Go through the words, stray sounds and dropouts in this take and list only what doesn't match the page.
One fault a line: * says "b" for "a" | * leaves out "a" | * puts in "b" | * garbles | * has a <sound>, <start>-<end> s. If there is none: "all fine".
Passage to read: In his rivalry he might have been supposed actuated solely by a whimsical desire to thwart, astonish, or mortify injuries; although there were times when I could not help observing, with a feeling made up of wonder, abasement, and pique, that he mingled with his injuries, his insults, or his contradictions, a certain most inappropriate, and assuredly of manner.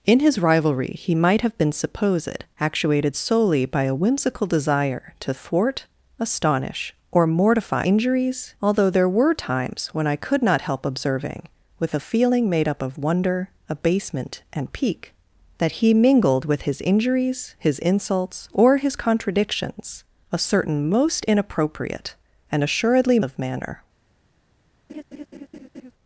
* has a laugh, 24.9-25.9 s